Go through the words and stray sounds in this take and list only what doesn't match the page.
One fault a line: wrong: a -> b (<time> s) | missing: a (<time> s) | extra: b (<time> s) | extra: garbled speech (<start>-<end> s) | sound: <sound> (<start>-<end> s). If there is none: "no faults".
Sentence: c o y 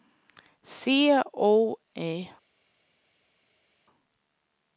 no faults